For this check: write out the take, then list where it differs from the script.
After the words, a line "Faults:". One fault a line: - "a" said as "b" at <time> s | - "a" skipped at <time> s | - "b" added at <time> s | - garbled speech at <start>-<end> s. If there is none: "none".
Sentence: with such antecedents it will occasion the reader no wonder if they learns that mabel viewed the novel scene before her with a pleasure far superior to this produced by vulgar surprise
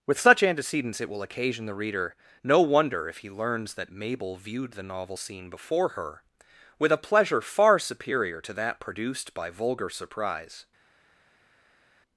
with such antecedents it will occasion the reader no wonder if he learns that mabel viewed the novel scene before her with a pleasure far superior to that produced by vulgar surprise
Faults:
- "they" said as "he" at 3.2 s
- "this" said as "that" at 8.5 s